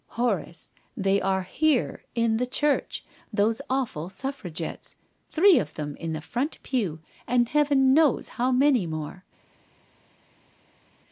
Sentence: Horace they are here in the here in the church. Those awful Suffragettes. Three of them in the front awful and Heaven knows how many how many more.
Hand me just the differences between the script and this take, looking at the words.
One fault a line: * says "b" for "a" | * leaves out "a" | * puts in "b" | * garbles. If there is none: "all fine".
* leaves out "here in the"
* says "pew" for "awful"
* leaves out "how many"